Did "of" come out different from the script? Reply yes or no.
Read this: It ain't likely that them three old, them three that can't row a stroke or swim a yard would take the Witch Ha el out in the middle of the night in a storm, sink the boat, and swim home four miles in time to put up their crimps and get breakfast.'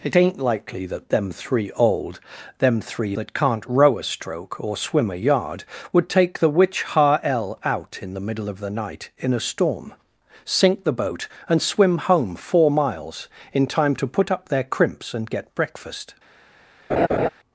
no